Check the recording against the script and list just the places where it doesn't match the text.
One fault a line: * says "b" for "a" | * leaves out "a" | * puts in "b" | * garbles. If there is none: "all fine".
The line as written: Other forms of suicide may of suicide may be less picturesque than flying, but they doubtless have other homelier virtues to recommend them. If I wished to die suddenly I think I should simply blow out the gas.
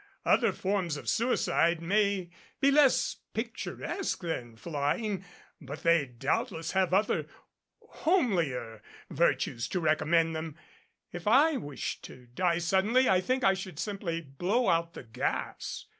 * leaves out "of suicide may"